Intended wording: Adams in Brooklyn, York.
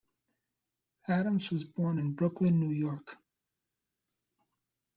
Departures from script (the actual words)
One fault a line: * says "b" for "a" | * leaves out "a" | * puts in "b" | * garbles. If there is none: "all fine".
* puts in "was born"
* puts in "New"